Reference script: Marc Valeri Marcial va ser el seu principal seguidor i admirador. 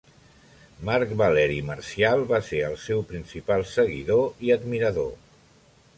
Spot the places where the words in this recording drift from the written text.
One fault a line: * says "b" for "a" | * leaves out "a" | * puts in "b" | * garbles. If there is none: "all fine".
all fine